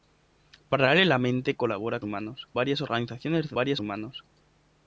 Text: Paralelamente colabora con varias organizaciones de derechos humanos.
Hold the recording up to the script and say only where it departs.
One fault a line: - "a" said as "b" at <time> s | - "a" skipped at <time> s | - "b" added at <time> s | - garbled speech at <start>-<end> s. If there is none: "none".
- "con" said as "humanos" at 2.0 s
- "derechos" said as "varias" at 3.6 s